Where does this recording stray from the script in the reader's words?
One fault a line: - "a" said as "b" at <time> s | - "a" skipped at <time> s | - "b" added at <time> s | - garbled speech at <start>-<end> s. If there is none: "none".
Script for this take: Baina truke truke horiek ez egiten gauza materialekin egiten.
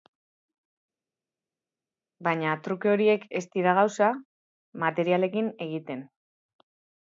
- "truke" skipped at 2.9 s
- "egiten" said as "dira" at 3.6 s